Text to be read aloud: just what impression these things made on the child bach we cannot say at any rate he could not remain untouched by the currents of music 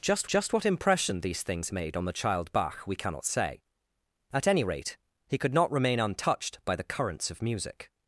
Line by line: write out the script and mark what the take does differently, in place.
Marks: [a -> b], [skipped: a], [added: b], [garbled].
just [added: just] what impression these things made on the child bach we cannot say at any rate he could not remain untouched by the currents of music